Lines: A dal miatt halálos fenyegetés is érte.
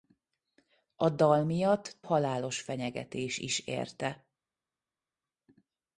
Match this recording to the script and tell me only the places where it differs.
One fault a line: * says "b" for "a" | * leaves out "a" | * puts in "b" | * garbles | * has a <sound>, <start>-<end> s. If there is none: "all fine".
all fine